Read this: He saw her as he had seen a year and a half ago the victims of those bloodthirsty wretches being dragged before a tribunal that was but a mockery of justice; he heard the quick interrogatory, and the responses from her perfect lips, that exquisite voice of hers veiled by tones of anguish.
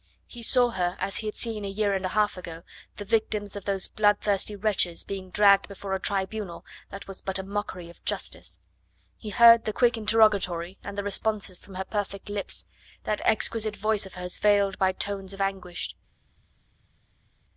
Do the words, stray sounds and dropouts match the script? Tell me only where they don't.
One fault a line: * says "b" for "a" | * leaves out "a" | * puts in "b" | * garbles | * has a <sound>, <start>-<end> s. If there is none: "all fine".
all fine